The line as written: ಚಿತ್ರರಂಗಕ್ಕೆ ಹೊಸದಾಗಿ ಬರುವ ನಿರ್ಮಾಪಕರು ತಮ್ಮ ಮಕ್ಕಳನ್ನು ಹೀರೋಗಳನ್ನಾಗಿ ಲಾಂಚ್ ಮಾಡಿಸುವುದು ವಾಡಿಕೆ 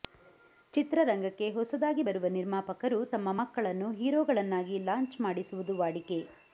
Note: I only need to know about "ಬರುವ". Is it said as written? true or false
true